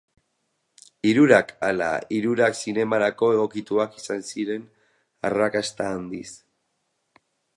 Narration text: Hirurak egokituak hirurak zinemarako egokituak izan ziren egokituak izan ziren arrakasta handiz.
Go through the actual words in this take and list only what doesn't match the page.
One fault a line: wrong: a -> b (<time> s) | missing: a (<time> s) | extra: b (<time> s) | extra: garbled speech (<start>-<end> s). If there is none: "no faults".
wrong: egokituak -> ala (1.7 s)
missing: egokituak izan ziren (4.6 s)